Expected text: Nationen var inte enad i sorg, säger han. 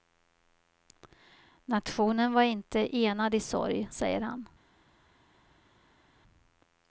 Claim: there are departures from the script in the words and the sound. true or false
false